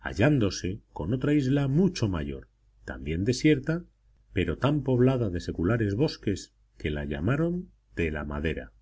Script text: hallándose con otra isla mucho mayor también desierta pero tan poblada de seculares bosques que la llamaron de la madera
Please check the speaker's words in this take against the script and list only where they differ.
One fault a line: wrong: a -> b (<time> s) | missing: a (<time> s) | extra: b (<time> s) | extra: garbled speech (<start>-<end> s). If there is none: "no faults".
no faults